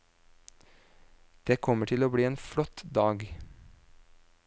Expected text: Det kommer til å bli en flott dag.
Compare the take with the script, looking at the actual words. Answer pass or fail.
pass